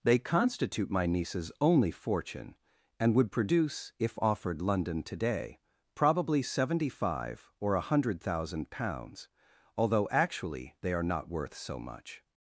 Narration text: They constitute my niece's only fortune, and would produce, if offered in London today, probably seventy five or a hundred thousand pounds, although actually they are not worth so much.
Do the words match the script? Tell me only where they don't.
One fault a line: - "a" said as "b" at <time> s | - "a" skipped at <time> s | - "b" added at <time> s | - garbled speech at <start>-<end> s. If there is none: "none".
- "in" skipped at 4.6 s